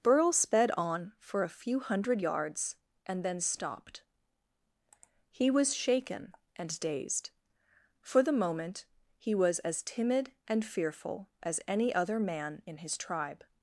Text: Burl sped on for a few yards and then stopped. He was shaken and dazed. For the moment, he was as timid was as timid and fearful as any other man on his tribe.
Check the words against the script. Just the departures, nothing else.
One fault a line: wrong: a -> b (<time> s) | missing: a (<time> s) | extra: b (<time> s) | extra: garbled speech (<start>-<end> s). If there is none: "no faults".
extra: hundred (1.8 s)
missing: was as timid (10.3 s)
wrong: on -> in (12.6 s)